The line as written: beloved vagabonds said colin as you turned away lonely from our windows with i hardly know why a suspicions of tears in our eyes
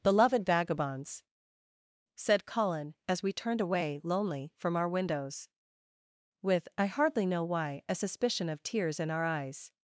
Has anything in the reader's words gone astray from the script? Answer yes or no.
yes